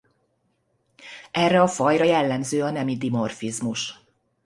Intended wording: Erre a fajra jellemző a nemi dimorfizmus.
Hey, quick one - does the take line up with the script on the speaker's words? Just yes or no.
yes